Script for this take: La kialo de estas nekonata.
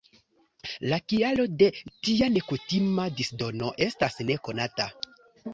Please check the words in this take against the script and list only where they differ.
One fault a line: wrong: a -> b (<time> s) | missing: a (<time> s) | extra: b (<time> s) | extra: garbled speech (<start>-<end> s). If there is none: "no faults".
extra: tia nekutima disdono (2.1 s)